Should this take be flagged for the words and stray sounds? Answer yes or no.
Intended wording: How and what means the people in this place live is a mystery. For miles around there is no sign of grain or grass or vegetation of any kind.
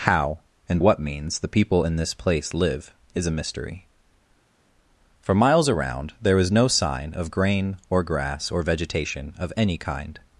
no